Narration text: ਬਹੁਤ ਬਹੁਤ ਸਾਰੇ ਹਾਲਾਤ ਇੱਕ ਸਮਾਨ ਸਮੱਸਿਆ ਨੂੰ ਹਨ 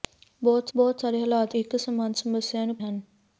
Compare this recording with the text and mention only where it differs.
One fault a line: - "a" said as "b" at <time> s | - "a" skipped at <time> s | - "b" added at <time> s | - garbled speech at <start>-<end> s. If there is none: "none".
none